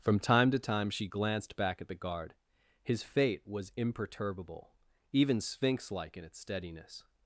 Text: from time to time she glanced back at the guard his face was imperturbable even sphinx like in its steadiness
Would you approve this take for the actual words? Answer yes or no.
no